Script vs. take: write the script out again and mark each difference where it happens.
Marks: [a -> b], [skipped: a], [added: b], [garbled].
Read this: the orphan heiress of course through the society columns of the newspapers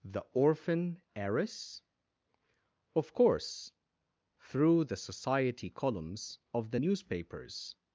the orphan heiress of course through the society columns of the newspapers